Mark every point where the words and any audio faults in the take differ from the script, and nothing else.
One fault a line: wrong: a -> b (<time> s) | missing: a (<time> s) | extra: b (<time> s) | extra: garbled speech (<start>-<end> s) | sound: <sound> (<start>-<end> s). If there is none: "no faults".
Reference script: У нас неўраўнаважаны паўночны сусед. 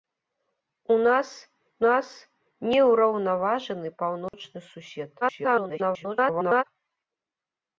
extra: нас (1.9 s)
sound: dropout (4.3-4.3 s)
extra: garbled speech (5.2-6.6 s)